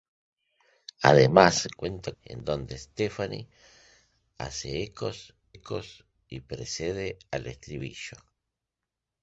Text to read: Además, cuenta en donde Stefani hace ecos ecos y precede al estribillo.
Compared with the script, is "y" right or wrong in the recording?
right